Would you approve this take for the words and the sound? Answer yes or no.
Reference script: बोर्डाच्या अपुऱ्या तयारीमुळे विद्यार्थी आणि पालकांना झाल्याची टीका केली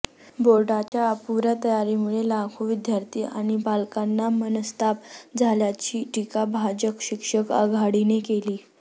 no